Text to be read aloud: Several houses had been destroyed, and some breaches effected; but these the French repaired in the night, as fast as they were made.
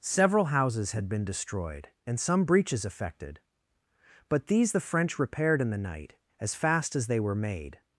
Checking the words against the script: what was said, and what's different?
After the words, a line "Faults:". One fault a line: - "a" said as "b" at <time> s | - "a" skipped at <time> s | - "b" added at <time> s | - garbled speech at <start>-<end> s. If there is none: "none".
Several houses had been destroyed, and some breaches effected; but these the French repaired in the night, as fast as they were made.
Faults:
none